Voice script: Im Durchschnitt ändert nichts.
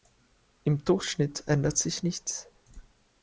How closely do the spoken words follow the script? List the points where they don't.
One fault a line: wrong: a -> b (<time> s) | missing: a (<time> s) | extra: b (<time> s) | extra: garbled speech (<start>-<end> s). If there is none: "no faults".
extra: sich (1.8 s)